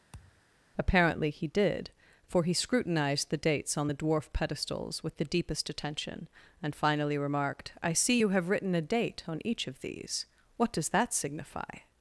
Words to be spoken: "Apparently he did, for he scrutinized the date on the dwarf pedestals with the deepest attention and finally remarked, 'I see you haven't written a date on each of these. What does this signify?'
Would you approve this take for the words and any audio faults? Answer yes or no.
no